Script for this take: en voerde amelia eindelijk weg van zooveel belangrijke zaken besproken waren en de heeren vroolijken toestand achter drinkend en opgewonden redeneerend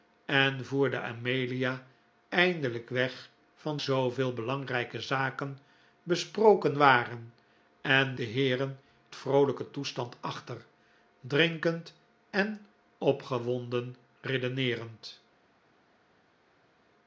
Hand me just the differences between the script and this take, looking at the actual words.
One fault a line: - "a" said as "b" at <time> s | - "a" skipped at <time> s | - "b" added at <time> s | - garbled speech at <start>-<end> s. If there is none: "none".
none